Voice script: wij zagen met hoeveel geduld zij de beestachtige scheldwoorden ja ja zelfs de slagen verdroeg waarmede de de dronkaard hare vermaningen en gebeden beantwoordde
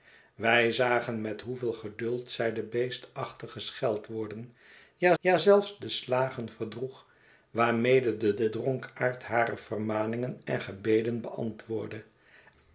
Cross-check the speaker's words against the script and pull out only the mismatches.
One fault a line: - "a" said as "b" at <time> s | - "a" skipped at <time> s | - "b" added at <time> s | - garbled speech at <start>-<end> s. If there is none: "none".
none